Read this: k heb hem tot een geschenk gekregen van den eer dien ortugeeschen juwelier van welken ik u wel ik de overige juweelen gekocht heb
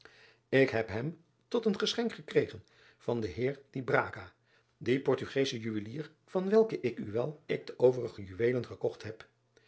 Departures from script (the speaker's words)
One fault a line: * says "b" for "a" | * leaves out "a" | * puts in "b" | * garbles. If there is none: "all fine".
all fine